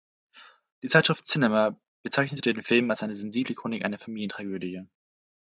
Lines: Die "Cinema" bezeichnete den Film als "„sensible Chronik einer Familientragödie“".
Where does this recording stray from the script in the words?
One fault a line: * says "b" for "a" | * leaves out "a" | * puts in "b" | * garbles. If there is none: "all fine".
* puts in "Zeitschrift"
* puts in "eine"